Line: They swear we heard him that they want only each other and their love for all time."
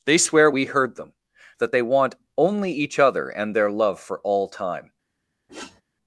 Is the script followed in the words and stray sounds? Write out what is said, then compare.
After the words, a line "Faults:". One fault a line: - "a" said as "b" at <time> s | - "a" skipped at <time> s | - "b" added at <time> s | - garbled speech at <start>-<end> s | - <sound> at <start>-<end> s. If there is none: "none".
They swear we heard them that they want only each other and their love for all time."
Faults:
- "him" said as "them" at 0.9 s
- sniff at 5.5-5.8 s